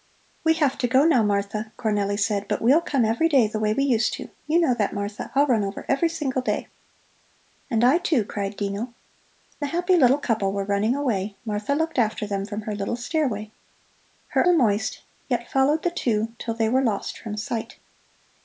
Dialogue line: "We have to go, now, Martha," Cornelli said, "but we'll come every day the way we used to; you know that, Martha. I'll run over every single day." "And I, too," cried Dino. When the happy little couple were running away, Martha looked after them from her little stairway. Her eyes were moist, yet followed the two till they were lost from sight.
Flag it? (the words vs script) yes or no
yes